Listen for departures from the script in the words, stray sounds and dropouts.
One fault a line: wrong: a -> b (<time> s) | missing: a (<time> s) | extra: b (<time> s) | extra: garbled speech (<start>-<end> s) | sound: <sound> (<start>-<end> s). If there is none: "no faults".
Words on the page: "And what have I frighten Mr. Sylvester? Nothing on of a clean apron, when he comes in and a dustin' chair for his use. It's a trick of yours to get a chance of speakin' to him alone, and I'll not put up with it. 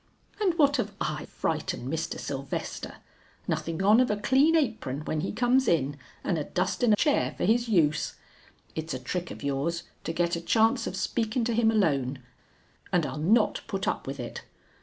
no faults